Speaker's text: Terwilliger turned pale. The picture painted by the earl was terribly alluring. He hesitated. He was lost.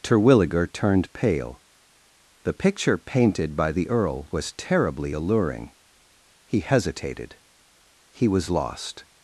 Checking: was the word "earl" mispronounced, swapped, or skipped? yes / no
no